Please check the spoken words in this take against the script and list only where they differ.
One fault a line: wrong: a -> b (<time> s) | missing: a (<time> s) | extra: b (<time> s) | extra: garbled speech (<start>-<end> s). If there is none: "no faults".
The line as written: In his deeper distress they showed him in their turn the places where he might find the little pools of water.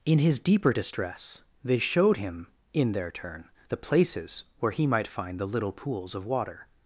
no faults